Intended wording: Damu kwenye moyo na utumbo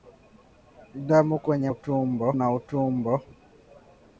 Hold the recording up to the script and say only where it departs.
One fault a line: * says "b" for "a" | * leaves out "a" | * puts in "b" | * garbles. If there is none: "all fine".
* says "utumbo" for "moyo"